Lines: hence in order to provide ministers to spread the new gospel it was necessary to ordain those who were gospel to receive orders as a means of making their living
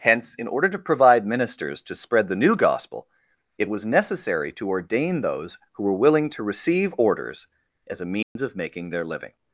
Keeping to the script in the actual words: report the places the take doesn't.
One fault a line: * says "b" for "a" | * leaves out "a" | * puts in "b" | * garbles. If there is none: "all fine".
* says "willing" for "gospel"